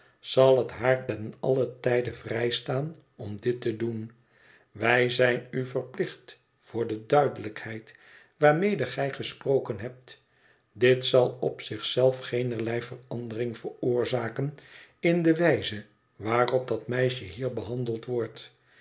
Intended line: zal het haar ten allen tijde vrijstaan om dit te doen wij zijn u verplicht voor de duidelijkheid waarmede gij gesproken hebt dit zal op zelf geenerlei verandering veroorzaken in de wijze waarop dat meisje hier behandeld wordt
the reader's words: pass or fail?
fail